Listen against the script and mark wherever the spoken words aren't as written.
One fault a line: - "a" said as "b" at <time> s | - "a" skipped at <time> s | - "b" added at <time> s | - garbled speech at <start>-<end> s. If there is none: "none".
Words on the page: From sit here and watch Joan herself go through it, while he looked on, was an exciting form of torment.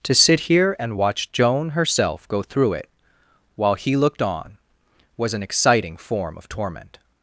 - "From" said as "To" at 0.0 s